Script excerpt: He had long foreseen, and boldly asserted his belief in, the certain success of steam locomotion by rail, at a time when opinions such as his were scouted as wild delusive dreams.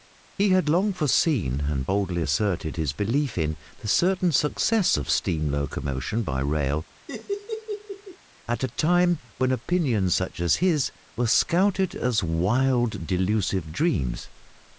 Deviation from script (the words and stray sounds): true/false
true